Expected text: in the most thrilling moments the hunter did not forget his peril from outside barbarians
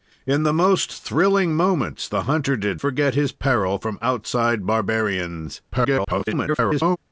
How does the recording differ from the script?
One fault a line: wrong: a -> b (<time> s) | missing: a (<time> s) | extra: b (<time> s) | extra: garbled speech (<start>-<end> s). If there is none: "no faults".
missing: not (2.8 s)
extra: garbled speech (5.7-7.0 s)